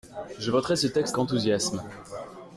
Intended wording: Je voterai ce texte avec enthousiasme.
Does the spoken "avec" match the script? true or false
false